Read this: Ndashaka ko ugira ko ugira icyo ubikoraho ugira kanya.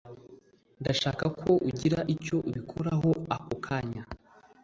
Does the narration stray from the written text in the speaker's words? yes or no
yes